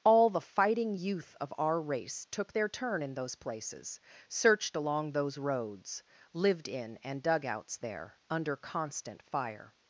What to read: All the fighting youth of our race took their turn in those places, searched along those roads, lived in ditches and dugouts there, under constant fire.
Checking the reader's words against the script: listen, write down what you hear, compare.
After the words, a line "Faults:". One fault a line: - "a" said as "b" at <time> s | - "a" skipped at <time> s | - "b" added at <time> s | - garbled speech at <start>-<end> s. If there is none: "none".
All the fighting youth of our race took their turn in those places, searched along those roads, lived in and dugouts there, under constant fire.
Faults:
- "ditches" skipped at 7.0 s